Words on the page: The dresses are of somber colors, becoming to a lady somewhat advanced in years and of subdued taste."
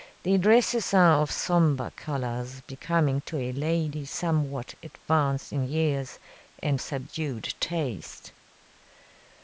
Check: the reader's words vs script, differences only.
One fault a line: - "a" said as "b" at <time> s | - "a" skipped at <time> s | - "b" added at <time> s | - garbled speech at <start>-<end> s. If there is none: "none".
- "of" skipped at 6.8 s